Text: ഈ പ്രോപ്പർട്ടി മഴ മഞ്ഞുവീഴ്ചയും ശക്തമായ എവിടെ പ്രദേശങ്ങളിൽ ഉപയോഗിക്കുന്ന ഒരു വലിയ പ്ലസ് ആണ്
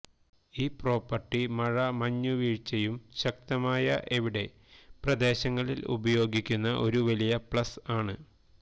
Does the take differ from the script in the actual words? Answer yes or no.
no